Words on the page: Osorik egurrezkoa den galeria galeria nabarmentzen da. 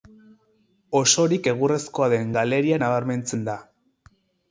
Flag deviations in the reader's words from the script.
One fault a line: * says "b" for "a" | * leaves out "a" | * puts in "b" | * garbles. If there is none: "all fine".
* leaves out "galeria"